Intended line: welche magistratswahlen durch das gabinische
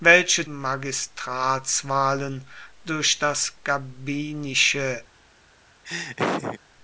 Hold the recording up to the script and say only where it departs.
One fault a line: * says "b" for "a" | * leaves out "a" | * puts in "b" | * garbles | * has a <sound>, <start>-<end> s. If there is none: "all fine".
* has a laugh, 5.8-6.6 s